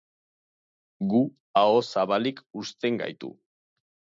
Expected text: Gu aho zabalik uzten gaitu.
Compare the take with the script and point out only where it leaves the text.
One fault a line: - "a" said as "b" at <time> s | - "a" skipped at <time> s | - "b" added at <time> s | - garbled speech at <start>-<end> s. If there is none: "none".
none